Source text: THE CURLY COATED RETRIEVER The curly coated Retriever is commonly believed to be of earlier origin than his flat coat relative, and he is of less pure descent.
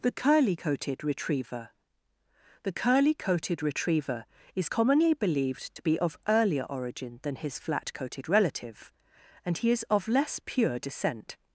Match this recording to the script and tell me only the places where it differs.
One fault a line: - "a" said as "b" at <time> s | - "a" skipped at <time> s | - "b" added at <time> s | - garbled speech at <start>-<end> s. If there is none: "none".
- "coat" said as "coated" at 7.9 s